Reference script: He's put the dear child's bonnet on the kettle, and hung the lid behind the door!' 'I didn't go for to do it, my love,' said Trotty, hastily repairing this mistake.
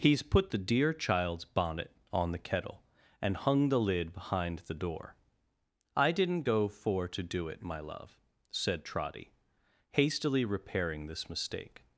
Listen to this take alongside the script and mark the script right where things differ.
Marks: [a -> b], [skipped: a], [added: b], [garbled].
He's put the dear child's bonnet on the kettle, and hung the lid behind the door!' 'I didn't go for to do it, my love,' said Trotty, hastily repairing this mistake.